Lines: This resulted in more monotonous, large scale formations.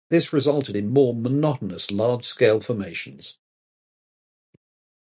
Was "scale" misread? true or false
false